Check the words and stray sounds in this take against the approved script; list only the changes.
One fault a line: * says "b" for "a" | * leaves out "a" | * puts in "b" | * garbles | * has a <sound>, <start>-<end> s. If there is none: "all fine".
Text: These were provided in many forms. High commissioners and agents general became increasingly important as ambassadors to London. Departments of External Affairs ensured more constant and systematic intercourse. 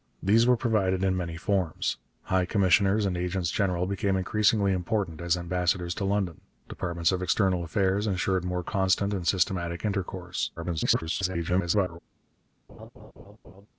* garbles
* has a laugh, 12.7-13.7 s